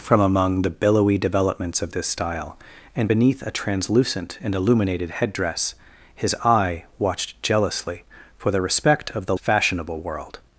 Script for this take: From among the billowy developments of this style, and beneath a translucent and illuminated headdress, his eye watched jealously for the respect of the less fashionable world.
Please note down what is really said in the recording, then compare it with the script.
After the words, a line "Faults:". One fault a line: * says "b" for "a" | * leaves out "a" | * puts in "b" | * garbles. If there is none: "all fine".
From among the billowy developments of this style, and beneath a translucent and illuminated headdress, his eye watched jealously for the respect of the fashionable world.
Faults:
* leaves out "less"